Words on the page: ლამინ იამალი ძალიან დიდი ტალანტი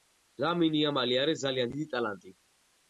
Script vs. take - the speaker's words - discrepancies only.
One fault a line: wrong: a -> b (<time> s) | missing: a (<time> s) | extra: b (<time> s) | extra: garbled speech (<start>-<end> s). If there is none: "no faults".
extra: არის (1.3 s)